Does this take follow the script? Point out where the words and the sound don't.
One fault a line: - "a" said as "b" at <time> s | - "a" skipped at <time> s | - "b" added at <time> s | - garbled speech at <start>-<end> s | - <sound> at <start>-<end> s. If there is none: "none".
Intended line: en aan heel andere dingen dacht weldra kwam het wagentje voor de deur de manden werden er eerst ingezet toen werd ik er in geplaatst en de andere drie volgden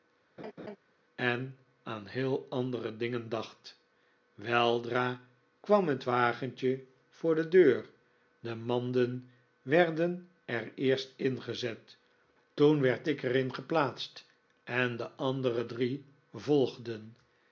- laugh at 0.4-0.8 s